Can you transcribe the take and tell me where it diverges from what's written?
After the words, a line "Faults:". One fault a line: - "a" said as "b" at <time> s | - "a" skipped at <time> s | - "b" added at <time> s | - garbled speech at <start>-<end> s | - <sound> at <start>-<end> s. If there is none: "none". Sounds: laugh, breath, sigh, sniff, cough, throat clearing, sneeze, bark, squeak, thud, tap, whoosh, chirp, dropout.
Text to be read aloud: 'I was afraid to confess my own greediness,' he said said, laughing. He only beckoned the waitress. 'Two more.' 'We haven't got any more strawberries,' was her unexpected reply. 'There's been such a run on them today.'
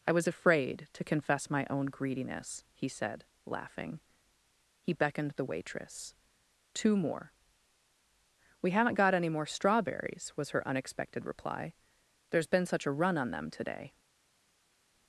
'I was afraid to confess my own greediness,' he said, laughing. He beckoned the waitress. 'Two more.' 'We haven't got any more strawberries,' was her unexpected reply. 'There's been such a run on them today.'
Faults:
- "said" skipped at 3.2 s
- "only" skipped at 4.9 s